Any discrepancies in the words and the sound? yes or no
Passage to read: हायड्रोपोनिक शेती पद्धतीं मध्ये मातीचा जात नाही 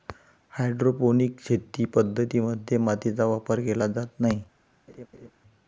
yes